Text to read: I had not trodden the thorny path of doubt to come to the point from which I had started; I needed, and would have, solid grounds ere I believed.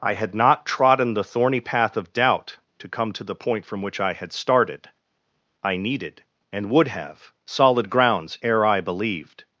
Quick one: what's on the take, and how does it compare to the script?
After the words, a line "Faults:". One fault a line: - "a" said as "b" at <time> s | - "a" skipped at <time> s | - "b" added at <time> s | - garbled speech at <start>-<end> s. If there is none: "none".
I had not trodden the thorny path of doubt to come to the point from which I had started; I needed, and would have, solid grounds ere I believed.
Faults:
none